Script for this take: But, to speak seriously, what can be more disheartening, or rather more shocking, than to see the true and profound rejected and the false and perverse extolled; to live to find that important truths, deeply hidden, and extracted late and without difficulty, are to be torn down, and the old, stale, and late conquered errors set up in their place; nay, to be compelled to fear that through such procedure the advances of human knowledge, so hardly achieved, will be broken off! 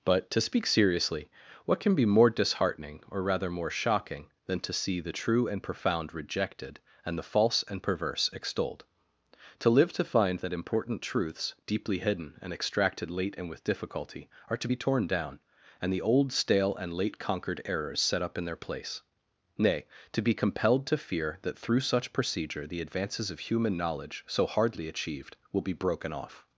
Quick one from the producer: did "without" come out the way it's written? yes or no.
no